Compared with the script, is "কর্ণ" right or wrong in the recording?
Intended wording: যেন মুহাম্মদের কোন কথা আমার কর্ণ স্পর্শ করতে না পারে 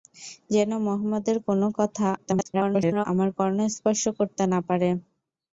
right